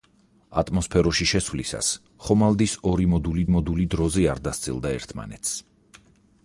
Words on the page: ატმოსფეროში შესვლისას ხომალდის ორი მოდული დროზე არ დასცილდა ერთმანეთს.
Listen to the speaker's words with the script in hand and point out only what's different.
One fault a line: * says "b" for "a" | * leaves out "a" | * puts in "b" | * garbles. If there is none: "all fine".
* puts in "მოდული"